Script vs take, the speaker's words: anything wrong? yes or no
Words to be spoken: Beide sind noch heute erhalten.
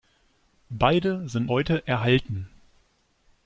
yes